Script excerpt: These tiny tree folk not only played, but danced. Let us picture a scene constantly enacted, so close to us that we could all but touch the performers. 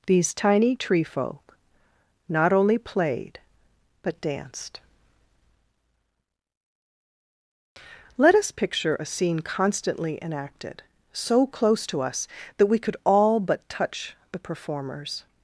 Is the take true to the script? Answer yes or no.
yes